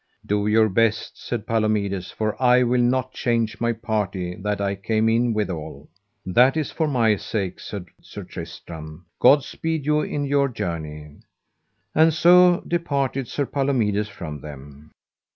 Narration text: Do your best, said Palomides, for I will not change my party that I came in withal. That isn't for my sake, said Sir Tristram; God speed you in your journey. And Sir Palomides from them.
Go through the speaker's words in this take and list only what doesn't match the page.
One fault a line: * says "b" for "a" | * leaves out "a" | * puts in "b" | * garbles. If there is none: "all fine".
* says "is" for "isn't"
* puts in "so departed"